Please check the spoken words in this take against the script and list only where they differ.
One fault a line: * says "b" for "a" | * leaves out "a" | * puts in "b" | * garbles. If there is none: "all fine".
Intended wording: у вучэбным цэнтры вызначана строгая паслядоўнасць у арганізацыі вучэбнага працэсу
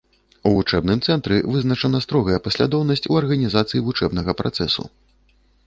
all fine